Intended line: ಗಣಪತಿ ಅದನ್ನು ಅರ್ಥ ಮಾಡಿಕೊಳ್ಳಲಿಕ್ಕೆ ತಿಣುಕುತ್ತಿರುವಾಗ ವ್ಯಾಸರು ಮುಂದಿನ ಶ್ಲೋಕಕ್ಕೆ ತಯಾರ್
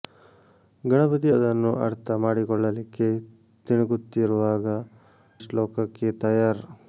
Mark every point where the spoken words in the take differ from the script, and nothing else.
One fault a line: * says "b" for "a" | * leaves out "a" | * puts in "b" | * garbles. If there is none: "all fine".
* leaves out "ವ್ಯಾಸರು ಮುಂದಿನ"